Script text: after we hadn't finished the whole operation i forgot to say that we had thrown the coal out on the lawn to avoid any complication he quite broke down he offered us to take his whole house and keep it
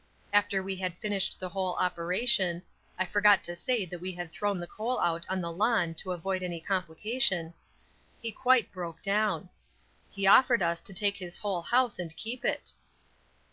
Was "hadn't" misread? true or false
true